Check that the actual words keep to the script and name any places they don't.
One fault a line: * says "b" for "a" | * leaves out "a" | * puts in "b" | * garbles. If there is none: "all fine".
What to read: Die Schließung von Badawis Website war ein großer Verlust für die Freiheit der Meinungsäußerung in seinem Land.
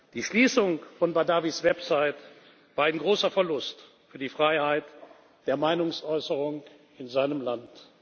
all fine